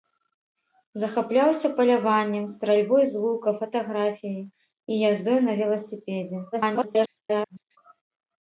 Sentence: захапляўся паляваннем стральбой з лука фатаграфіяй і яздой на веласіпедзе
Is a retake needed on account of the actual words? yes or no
yes